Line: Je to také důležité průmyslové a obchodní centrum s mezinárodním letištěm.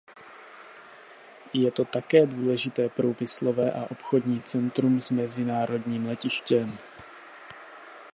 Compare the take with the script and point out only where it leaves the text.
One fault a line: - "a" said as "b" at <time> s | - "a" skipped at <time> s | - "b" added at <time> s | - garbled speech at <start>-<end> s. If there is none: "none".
none